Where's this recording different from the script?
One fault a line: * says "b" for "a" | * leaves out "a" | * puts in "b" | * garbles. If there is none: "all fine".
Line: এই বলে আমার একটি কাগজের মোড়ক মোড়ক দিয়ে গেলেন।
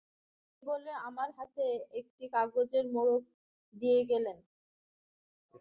* puts in "হাতে"
* leaves out "মোড়ক"